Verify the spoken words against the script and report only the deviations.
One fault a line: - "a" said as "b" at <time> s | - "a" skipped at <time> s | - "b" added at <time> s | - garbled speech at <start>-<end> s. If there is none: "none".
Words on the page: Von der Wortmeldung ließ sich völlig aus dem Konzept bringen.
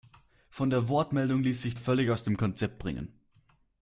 none